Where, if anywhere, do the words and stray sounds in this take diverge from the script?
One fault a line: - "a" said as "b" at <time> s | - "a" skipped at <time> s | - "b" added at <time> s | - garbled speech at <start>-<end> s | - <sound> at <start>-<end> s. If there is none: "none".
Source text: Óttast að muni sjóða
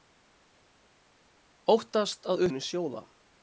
none